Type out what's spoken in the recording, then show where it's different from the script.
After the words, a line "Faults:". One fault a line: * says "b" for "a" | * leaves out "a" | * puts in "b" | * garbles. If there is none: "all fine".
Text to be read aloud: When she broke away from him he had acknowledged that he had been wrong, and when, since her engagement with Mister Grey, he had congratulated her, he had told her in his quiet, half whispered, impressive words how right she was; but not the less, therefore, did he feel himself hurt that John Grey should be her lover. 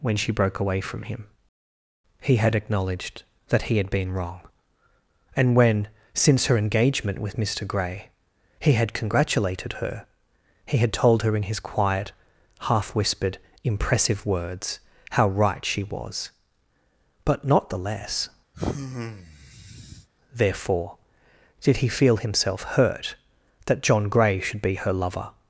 When she broke away from him he had acknowledged that he had been wrong, and when, since her engagement with Mister Grey, he had congratulated her, he had told her in his quiet, half whispered, impressive words how right she was; but not the less, therefore, did he feel himself hurt that John Grey should be her lover.
Faults:
all fine